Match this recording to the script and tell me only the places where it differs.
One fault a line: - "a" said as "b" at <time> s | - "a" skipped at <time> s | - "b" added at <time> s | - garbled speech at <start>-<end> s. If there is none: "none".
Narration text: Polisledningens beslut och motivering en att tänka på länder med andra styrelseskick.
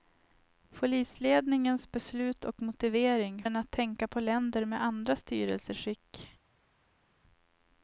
none